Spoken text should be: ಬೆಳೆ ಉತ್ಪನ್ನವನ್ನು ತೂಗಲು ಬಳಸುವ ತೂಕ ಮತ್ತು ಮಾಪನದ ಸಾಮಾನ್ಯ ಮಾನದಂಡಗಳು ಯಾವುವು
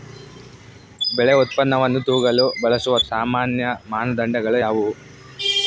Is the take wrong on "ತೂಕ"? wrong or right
wrong